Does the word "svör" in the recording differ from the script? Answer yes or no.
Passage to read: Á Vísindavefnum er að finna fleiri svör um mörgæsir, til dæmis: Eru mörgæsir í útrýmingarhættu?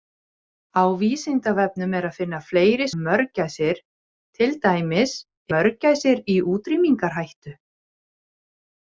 yes